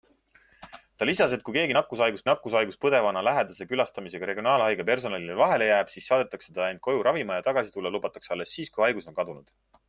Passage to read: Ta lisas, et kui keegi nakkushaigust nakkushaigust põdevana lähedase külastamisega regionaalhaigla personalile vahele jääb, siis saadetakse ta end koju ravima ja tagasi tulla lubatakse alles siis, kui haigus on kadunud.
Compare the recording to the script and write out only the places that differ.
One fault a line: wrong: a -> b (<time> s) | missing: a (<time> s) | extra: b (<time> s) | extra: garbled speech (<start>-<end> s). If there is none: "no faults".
no faults